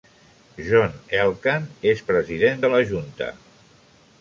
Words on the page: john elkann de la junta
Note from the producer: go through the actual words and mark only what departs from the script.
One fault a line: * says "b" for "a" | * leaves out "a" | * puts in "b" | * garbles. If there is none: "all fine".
* puts in "és president"